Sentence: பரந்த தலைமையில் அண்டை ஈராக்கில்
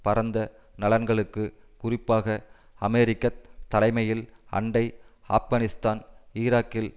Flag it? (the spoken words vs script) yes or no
yes